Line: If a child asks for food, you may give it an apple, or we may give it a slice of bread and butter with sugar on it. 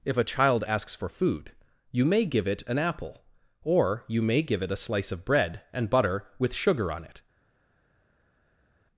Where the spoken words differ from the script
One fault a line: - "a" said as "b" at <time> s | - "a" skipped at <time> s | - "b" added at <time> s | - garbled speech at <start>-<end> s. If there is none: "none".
- "we" said as "you" at 4.1 s